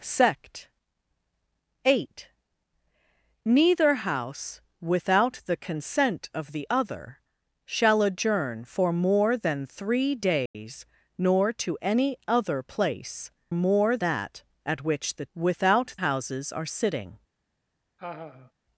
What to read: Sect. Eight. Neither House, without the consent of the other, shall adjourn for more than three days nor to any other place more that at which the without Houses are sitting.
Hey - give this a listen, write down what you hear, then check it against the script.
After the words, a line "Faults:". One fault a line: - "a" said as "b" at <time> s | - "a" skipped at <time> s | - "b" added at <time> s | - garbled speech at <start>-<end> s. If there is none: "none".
Sect. Eight. Neither House, without the consent of the other, shall adjourn for more than three days nor to any other place more that at which the without Houses are sitting.
Faults:
none